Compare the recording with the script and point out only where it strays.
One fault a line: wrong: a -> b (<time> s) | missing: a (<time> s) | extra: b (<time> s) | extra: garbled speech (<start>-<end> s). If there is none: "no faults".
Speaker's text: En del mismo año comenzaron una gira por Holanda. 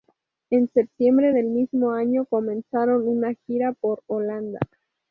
extra: septiembre (0.7 s)